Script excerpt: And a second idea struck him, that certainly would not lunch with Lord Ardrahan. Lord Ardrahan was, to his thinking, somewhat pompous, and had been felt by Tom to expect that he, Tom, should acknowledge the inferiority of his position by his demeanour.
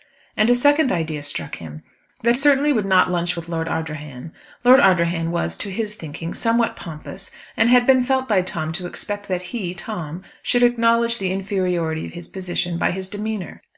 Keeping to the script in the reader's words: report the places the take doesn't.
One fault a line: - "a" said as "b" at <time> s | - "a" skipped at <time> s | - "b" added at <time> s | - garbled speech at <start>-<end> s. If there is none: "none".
none